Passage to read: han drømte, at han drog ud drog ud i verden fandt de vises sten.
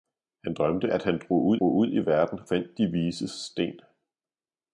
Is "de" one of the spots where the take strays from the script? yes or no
no